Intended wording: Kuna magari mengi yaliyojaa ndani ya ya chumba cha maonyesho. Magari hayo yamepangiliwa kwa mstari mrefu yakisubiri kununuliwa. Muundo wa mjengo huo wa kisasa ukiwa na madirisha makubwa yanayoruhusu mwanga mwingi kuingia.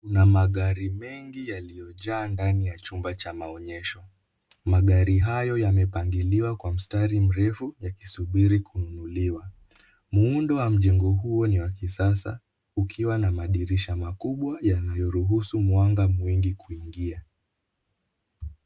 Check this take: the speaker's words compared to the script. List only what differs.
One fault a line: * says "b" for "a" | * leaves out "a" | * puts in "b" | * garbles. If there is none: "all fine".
* leaves out "ya"
* puts in "ni"